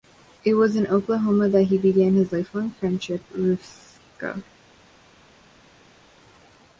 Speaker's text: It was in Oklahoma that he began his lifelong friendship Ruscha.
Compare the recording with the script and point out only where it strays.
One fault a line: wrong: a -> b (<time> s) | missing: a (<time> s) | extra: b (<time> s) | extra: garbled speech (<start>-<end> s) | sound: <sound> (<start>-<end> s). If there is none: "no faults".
no faults